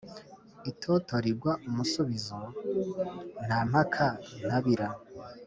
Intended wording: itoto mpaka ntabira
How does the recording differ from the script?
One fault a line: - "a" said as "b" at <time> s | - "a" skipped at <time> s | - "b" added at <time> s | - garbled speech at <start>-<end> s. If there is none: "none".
- "rigwa umusubizo nta" added at 1.2 s